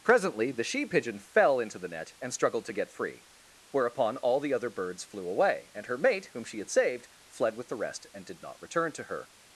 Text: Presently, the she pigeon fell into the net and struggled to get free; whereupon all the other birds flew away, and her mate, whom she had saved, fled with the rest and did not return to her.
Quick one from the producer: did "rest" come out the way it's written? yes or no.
yes